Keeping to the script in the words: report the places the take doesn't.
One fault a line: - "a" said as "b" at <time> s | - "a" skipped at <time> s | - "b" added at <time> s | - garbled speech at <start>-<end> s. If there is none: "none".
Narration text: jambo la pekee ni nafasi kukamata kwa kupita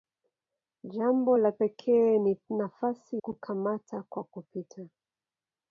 none